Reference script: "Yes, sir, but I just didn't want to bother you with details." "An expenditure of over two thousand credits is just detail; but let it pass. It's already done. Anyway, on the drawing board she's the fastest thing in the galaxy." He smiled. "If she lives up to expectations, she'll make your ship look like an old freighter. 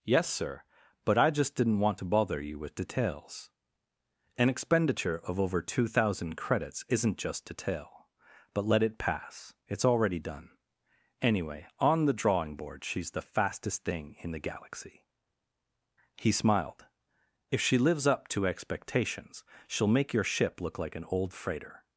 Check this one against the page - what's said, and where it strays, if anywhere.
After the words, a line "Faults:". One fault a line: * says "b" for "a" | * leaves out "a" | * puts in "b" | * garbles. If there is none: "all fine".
"Yes, sir, but I just didn't want to bother you with details." "An expenditure of over two thousand credits isn't just detail; but let it pass. It's already done. Anyway, on the drawing board she's the fastest thing in the galaxy." He smiled. "If she lives up to expectations, she'll make your ship look like an old freighter.
Faults:
* says "isn't" for "is"